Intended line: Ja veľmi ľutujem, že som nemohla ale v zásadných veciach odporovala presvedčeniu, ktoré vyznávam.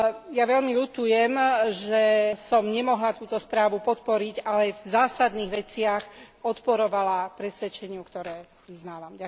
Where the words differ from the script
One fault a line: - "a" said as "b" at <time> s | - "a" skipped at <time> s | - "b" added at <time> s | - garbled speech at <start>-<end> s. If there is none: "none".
- "túto správu podporiť" added at 3.1 s